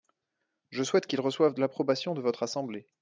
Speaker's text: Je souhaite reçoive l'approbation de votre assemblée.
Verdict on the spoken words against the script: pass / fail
fail